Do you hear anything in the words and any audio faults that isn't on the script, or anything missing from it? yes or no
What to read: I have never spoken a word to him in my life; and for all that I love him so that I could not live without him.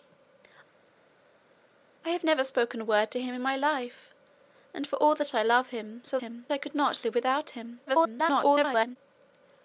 yes